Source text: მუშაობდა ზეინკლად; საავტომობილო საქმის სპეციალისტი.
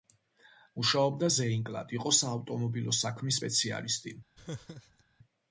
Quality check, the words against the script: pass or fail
fail